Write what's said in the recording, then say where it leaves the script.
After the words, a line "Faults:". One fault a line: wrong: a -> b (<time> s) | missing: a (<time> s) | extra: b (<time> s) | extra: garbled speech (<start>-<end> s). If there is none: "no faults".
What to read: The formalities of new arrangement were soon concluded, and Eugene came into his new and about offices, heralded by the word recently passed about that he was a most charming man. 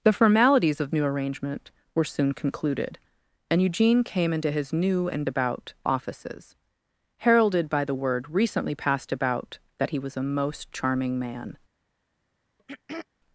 The formalities of new arrangement were soon concluded, and Eugene came into his new and about offices, heralded by the word recently passed about that he was a most charming man.
Faults:
no faults